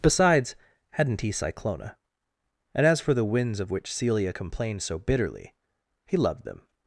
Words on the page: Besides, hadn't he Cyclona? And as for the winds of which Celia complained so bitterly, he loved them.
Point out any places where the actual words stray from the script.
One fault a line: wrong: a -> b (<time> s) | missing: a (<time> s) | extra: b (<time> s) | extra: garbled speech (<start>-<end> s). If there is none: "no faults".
no faults